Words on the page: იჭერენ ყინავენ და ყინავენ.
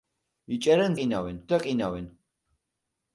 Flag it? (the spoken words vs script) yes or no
no